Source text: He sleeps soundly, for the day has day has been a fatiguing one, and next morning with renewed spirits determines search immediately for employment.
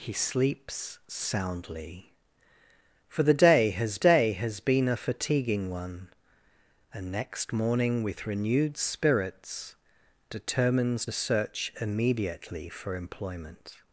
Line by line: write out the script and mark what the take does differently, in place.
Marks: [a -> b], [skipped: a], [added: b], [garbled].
He sleeps soundly, for the day has day has been a fatiguing one, and next morning with renewed spirits determines search immediately for employment.